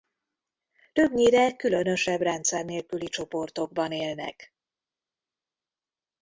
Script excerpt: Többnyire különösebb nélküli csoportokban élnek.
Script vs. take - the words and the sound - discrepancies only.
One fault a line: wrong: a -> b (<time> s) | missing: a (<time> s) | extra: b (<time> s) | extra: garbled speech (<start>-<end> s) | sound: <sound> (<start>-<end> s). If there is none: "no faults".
extra: rendszer (2.2 s)